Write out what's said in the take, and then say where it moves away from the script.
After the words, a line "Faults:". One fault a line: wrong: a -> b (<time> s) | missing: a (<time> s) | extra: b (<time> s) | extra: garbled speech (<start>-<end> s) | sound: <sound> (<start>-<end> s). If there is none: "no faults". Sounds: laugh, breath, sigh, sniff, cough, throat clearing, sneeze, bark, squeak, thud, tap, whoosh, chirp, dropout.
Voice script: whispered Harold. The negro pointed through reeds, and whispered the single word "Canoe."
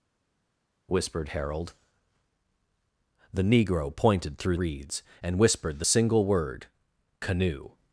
whispered Harold. The negro pointed through reeds, and whispered the single word "Canoe."
Faults:
no faults